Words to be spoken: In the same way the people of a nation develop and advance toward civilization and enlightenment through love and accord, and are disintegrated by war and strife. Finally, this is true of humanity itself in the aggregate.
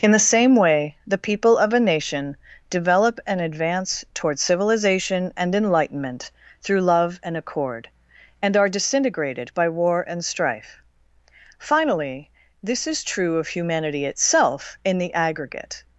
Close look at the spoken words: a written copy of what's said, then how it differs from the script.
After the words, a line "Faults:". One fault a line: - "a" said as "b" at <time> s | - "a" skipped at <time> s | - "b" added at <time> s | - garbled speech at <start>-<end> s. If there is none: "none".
In the same way the people of a nation develop and advance toward civilization and enlightenment through love and accord, and are disintegrated by war and strife. Finally, this is true of humanity itself in the aggregate.
Faults:
none